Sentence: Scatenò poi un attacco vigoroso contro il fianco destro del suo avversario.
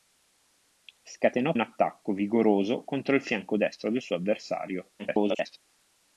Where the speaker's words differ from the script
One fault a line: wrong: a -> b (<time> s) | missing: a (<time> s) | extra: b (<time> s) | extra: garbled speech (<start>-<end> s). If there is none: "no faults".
missing: poi (1.6 s)
extra: garbled speech (5.0-5.6 s)